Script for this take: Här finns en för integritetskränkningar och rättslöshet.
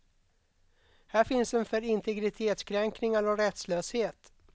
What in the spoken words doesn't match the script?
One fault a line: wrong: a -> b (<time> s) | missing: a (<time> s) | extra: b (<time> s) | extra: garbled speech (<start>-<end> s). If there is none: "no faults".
no faults